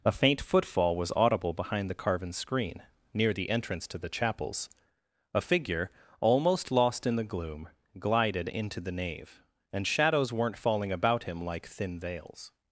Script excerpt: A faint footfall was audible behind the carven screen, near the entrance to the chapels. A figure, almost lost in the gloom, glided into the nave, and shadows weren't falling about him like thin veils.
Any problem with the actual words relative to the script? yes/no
no